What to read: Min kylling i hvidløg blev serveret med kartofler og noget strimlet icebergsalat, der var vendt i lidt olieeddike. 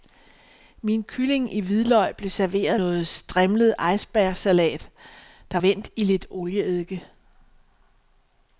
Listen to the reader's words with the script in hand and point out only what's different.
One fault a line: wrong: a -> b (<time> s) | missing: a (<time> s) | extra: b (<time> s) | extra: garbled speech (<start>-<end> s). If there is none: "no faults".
missing: med kartofler og (2.8 s)
missing: var (5.6 s)